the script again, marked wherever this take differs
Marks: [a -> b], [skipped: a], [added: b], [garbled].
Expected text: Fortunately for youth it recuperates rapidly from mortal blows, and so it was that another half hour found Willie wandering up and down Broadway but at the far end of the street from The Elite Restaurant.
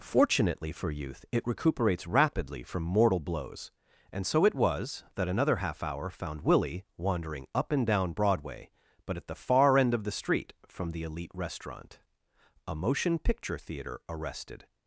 Fortunately for youth it recuperates rapidly from mortal blows, and so it was that another half hour found Willie wandering up and down Broadway but at the far end of the street from The Elite Restaurant. [added: A motion picture theater arrested]